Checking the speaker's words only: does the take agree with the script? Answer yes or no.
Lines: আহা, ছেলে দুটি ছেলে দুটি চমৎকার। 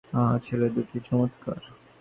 no